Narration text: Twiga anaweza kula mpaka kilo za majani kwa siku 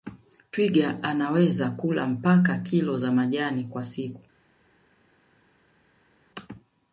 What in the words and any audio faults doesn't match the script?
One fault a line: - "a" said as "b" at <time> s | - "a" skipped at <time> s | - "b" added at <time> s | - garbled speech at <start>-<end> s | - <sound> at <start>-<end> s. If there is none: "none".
none